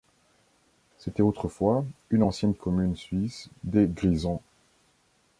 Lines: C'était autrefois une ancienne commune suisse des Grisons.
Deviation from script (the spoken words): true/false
false